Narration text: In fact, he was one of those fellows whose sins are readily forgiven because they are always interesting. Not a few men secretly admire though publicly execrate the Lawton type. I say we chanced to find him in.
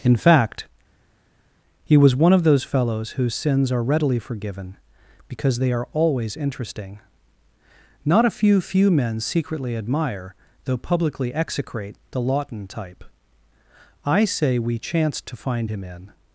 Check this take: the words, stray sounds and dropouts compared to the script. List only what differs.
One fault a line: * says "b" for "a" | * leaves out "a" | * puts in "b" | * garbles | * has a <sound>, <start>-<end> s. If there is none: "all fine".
* puts in "few"